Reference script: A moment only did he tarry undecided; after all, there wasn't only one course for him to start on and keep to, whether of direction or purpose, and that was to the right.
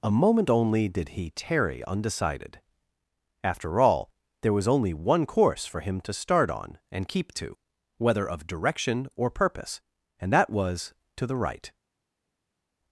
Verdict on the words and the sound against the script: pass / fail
fail